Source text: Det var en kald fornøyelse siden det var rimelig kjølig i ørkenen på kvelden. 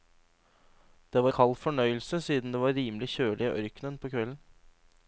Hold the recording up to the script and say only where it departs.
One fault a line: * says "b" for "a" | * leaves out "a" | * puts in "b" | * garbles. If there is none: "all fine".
* leaves out "en"